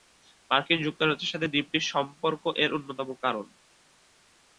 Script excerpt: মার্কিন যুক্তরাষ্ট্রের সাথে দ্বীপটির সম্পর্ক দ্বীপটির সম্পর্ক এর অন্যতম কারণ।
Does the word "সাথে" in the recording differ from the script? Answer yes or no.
no